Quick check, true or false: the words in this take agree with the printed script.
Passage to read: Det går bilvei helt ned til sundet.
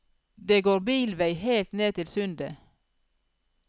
true